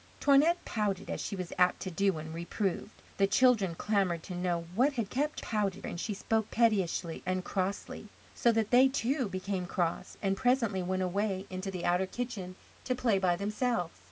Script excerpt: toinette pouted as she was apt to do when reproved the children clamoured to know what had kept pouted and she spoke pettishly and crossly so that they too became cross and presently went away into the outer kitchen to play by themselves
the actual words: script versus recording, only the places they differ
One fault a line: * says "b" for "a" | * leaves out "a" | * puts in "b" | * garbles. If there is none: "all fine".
all fine